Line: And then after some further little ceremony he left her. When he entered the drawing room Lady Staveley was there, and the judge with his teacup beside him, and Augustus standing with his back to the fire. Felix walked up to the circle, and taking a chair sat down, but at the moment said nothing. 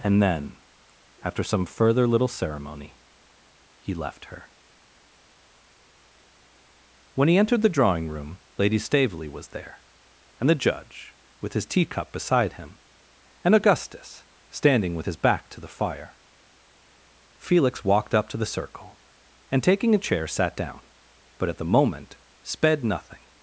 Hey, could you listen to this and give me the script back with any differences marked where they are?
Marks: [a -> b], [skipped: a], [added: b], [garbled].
And then after some further little ceremony he left her. When he entered the drawing room Lady Staveley was there, and the judge with his teacup beside him, and Augustus standing with his back to the fire. Felix walked up to the circle, and taking a chair sat down, but at the moment [said -> sped] nothing.